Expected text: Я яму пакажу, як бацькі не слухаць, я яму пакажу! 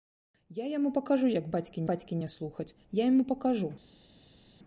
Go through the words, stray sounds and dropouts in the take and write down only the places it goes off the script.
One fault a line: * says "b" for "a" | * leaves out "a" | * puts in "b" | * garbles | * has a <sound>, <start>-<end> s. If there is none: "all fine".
* puts in "бацькі"